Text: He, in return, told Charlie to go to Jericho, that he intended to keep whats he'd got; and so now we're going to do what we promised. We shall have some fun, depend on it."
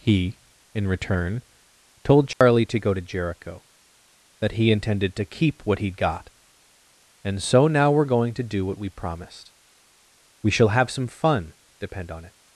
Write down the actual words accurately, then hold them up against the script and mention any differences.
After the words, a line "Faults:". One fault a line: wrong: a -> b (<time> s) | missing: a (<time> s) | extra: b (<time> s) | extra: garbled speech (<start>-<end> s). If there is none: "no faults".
He, in return, told Charlie to go to Jericho, that he intended to keep what he'd got; and so now we're going to do what we promised. We shall have some fun, depend on it."
Faults:
wrong: whats -> what (5.6 s)